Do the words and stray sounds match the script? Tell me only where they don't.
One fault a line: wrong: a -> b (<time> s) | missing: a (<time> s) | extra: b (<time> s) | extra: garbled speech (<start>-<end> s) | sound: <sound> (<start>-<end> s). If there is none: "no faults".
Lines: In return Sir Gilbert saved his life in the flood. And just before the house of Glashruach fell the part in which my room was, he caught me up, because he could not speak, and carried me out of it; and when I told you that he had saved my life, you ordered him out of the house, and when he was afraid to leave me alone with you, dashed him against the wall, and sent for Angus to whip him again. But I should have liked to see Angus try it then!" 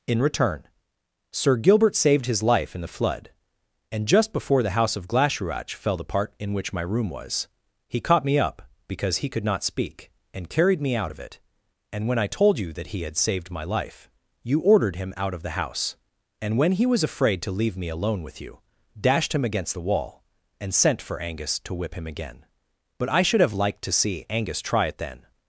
no faults